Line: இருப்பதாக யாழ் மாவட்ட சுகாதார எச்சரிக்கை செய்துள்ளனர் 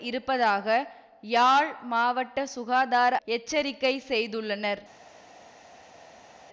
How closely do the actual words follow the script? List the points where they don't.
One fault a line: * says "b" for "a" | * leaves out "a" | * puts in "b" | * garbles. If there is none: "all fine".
all fine